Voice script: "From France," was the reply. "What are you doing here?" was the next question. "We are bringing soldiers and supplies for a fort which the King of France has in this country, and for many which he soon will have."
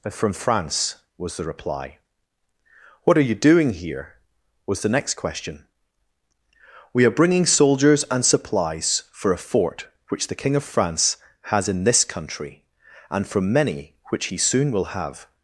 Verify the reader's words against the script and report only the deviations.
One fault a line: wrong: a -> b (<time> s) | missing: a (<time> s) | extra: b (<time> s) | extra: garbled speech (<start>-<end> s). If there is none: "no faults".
wrong: for -> from (13.3 s)